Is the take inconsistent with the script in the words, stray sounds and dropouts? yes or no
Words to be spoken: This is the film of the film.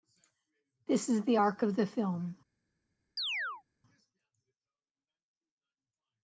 yes